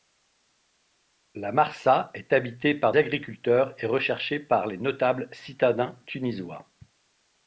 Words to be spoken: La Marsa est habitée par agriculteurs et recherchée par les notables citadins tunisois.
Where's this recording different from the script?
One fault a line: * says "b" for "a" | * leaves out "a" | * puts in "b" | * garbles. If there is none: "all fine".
all fine